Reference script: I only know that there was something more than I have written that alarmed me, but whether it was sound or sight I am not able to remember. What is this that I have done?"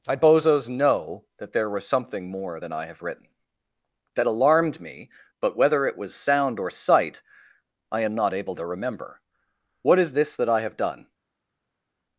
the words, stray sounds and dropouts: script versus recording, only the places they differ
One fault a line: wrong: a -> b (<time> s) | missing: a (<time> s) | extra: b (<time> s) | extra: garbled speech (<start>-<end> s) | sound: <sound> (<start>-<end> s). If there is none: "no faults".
wrong: only -> bozos (0.1 s)